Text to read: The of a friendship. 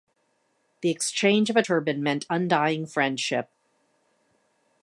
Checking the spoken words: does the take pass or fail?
fail